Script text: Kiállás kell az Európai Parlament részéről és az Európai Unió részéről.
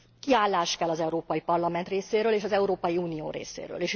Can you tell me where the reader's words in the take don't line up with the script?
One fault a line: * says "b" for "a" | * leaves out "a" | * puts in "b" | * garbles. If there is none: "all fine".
all fine